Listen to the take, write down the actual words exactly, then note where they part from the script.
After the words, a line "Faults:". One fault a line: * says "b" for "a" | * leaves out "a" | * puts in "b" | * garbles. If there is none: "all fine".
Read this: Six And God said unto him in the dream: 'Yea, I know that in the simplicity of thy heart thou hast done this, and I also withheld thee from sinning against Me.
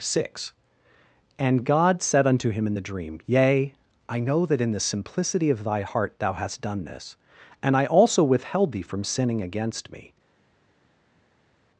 Six And God said unto him in the dream: 'Yea, I know that in the simplicity of thy heart thou hast done this, and I also withheld thee from sinning against Me.
Faults:
all fine